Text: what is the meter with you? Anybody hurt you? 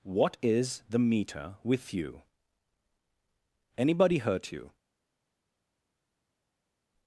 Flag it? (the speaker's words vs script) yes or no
no